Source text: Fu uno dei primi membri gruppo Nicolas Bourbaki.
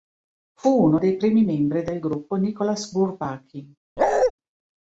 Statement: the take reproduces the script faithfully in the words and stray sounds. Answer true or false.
false